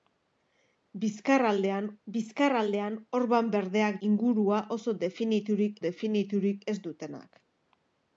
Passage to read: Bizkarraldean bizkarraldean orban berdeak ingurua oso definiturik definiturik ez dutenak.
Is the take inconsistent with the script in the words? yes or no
no